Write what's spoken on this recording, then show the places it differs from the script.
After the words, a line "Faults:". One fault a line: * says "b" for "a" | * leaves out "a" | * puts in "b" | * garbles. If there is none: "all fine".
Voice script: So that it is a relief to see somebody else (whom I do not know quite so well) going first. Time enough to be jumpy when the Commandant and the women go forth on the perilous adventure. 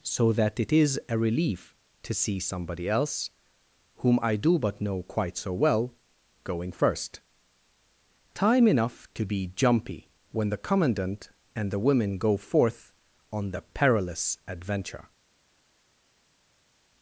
So that it is a relief to see somebody else (whom I do but know quite so well) going first. Time enough to be jumpy when the Commandant and the women go forth on the perilous adventure.
Faults:
* says "but" for "not"